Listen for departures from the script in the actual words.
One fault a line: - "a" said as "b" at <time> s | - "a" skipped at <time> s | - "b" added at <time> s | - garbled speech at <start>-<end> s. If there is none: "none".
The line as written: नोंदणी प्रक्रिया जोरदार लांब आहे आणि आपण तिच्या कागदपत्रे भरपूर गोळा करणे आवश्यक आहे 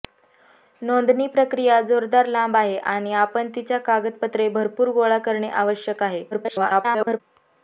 - garbled speech at 6.3-7.2 s